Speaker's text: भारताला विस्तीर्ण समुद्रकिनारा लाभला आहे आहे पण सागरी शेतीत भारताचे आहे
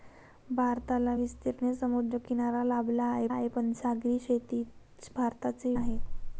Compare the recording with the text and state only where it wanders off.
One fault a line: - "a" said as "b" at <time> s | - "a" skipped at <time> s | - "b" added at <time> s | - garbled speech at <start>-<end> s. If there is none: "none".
none